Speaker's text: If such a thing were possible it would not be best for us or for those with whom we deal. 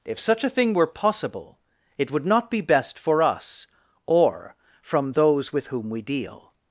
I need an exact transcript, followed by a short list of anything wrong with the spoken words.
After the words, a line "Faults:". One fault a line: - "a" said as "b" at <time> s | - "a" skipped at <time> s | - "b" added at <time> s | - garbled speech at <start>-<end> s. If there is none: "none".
If such a thing were possible it would not be best for us or from those with whom we deal.
Faults:
- "for" said as "from" at 4.8 s